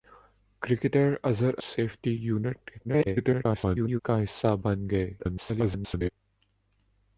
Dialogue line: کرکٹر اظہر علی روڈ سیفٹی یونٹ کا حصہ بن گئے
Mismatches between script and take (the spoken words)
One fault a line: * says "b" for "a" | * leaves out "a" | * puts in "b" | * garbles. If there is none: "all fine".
* leaves out "علی روڈ"
* garbles
* garbles